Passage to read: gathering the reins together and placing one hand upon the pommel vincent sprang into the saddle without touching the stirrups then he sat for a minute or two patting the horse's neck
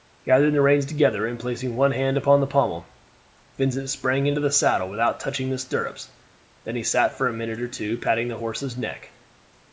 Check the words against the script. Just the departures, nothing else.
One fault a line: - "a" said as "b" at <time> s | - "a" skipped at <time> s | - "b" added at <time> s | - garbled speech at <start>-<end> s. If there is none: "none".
none